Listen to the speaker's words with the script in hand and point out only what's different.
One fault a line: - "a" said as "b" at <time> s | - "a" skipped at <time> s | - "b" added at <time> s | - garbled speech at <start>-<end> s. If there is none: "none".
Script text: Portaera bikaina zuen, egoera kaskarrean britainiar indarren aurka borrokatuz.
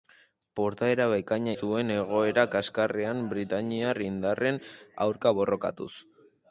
none